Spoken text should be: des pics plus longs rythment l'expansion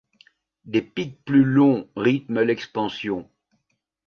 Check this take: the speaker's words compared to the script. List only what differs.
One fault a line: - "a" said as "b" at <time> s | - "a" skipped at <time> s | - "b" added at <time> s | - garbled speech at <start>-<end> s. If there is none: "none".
none